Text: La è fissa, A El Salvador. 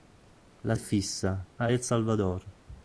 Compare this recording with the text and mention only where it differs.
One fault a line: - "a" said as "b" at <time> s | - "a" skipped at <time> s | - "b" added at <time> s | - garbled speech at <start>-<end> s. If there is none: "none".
none